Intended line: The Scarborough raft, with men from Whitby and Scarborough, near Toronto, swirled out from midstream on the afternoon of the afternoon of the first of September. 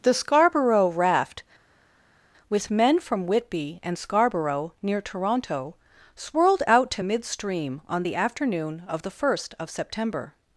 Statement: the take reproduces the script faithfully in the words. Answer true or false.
false